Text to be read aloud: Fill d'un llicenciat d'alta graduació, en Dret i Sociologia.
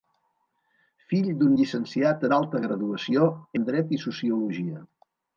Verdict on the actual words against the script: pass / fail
pass